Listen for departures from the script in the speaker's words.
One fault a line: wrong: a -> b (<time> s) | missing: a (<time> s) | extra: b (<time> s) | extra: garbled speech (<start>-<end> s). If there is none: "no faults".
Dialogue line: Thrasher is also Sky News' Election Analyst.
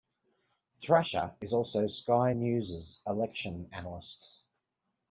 no faults